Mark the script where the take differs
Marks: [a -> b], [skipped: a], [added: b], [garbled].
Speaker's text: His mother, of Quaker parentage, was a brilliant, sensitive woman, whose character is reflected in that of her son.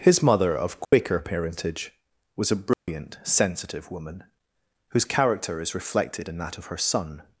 His mother, of Quaker parentage, was a brilliant, sensitive woman, whose character is reflected in that of her son.